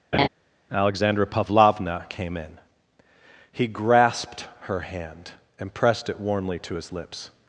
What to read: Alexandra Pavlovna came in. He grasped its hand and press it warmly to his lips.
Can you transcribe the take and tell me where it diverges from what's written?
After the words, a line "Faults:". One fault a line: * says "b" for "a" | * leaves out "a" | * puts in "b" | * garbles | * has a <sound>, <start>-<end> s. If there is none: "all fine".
Alexandra Pavlovna came in. He grasped her hand and pressed it warmly to his lips.
Faults:
* has a laugh, 0.1-0.3 s
* says "her" for "its"
* says "pressed" for "press"